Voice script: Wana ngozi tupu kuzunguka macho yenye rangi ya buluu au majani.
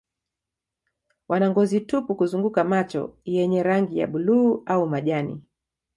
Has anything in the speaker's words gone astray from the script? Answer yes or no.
no